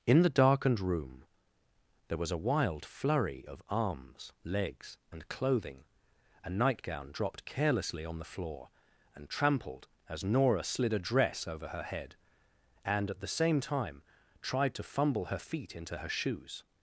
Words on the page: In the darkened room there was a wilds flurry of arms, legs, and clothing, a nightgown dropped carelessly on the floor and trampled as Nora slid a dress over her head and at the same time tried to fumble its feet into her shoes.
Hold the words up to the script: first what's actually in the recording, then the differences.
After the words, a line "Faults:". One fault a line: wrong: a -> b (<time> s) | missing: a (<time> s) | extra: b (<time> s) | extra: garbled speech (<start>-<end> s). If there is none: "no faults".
In the darkened room there was a wild flurry of arms, legs, and clothing, a nightgown dropped carelessly on the floor and trampled as Nora slid a dress over her head and at the same time tried to fumble her feet into her shoes.
Faults:
wrong: wilds -> wild (2.4 s)
wrong: its -> her (15.3 s)